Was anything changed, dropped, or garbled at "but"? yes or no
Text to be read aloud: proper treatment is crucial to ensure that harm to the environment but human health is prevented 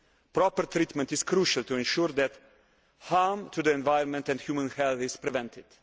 yes